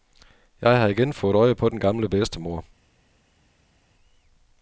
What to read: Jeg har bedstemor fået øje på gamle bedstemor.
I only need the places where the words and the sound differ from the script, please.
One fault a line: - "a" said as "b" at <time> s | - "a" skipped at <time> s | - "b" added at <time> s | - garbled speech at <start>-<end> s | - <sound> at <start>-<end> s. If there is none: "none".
- "bedstemor" said as "igen" at 0.9 s
- "den" added at 1.7 s